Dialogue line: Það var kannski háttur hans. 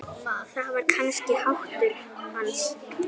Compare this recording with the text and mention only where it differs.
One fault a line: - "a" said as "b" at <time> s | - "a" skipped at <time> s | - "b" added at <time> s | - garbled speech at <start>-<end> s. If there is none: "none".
none